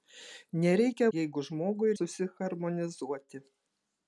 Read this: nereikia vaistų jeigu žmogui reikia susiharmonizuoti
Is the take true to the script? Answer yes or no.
no